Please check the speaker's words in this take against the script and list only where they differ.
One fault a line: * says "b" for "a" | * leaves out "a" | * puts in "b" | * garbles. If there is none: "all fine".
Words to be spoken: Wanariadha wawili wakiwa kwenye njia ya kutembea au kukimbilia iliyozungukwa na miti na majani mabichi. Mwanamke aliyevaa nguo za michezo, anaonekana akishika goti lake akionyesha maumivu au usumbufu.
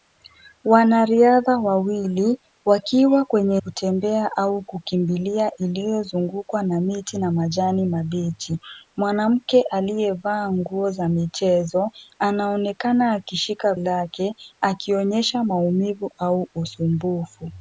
* leaves out "njia ya"
* leaves out "goti"